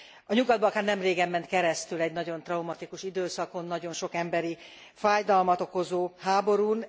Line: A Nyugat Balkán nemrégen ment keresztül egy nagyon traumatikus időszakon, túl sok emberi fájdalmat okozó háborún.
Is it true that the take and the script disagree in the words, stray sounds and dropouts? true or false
true